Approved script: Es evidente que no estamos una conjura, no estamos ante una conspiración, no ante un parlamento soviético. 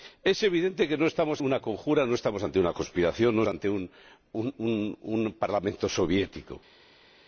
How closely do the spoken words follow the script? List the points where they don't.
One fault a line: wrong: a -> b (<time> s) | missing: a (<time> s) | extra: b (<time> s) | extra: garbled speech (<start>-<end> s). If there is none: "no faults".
no faults